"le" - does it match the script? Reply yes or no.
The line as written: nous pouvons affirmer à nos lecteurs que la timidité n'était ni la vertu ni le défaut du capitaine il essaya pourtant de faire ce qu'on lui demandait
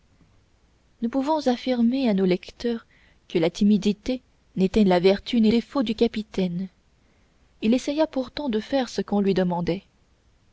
no